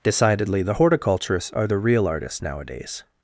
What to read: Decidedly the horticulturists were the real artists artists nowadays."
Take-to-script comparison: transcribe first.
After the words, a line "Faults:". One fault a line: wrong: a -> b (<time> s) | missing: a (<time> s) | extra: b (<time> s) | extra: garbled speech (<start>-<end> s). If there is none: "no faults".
Decidedly the horticulturists are the real artists nowadays."
Faults:
wrong: were -> are (1.5 s)
missing: artists (2.4 s)